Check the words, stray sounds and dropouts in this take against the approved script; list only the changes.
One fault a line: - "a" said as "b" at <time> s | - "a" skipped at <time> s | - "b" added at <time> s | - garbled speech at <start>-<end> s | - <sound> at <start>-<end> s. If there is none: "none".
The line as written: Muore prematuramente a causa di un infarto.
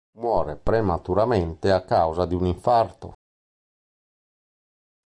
none